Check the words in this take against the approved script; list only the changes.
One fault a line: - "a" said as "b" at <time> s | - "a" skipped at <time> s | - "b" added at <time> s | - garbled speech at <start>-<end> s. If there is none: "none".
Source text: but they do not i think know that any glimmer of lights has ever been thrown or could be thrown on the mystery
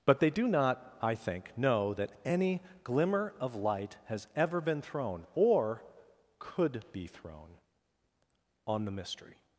- "lights" said as "light" at 3.5 s